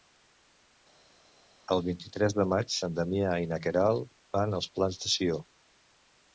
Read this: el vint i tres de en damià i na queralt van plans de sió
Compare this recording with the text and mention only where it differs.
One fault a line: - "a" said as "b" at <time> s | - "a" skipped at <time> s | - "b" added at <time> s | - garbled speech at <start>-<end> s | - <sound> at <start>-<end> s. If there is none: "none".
- "maig" added at 2.5 s
- "als" added at 4.6 s